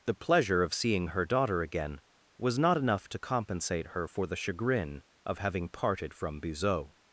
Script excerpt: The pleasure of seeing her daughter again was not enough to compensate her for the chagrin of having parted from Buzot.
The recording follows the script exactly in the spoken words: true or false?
true